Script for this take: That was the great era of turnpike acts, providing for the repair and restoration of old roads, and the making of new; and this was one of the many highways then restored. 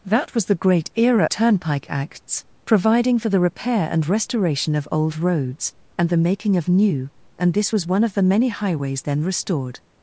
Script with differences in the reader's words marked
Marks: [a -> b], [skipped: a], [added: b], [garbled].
That was the great era [skipped: of] turnpike acts, providing for the repair and restoration of old roads, and the making of new; and this was one of the many highways then restored.